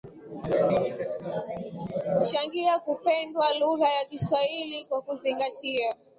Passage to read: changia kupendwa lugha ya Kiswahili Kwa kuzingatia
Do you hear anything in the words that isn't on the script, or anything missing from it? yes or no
no